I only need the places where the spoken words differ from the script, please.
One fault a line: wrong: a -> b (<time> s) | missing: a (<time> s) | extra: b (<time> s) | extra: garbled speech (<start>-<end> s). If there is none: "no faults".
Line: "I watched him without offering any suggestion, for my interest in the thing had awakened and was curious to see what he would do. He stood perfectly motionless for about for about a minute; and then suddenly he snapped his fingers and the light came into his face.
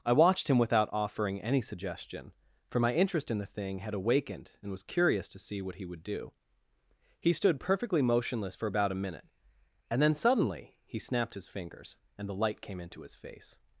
missing: for about (8.9 s)